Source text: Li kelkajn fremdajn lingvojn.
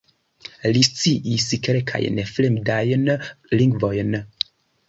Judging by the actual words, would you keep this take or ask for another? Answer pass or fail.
fail